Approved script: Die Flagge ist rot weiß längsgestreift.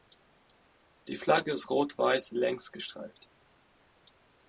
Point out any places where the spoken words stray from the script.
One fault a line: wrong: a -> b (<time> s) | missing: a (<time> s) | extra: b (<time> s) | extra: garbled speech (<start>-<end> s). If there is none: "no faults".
no faults